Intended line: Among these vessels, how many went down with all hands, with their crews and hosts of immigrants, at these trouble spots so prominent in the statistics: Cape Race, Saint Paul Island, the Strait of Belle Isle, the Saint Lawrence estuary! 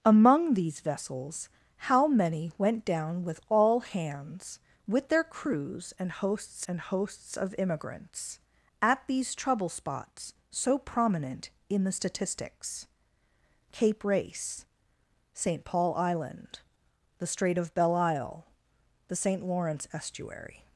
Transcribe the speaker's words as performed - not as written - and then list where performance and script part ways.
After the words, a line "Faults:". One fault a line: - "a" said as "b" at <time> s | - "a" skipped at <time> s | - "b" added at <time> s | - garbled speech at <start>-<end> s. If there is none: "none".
Among these vessels, how many went down with all hands, with their crews and hosts and hosts of immigrants, at these trouble spots so prominent in the statistics: Cape Race, Saint Paul Island, the Strait of Belle Isle, the Saint Lawrence estuary!
Faults:
- "and hosts" added at 6.7 s